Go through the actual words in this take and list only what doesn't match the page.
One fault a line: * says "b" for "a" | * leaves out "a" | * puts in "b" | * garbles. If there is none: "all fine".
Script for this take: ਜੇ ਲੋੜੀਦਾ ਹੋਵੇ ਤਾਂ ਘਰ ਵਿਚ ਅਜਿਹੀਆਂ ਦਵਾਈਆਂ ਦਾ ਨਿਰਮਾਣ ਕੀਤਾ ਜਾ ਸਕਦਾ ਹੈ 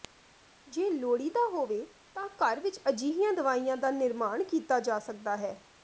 all fine